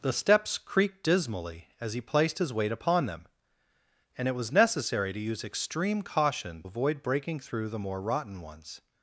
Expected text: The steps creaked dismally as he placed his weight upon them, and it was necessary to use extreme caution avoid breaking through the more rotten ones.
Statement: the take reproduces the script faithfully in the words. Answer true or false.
true